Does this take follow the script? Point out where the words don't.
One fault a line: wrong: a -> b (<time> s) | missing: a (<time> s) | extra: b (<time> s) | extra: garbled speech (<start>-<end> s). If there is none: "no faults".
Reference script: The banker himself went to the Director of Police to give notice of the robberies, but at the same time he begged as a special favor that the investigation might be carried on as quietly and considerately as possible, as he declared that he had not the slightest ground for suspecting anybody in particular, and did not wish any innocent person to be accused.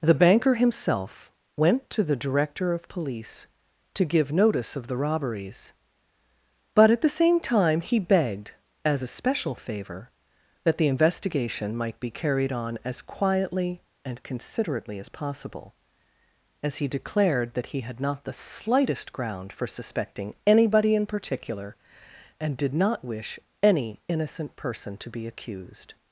no faults